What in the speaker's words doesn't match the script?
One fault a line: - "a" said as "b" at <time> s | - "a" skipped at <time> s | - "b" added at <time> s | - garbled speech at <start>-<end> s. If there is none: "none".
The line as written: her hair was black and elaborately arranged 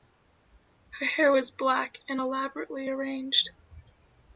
none